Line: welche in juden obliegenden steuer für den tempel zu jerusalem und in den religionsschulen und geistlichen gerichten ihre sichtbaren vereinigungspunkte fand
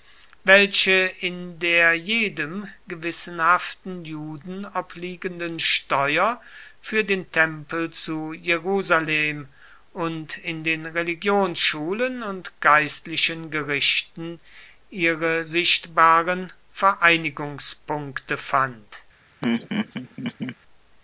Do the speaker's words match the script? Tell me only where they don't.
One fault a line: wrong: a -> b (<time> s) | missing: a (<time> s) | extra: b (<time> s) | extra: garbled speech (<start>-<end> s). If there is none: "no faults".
extra: der jedem gewissenhaften (1.6 s)